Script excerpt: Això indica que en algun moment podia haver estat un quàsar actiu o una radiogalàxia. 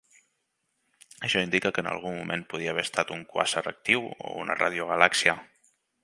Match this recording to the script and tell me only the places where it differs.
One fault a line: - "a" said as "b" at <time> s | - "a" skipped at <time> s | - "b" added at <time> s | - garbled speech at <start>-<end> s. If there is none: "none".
none